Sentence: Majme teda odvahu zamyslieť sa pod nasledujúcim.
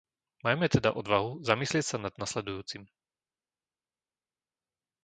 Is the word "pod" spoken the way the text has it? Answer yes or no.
no